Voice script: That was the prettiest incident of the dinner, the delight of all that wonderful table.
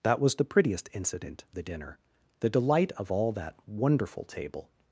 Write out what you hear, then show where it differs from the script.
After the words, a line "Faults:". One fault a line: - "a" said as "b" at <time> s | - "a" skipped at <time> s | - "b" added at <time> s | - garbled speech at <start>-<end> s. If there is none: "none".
That was the prettiest incident the dinner, the delight of all that wonderful table.
Faults:
- "of" skipped at 1.4 s